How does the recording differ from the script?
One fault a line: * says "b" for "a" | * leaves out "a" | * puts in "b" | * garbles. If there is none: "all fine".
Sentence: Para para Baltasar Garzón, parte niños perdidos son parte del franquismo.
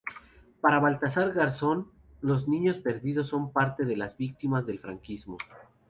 * leaves out "para"
* says "los" for "parte"
* puts in "de las víctimas"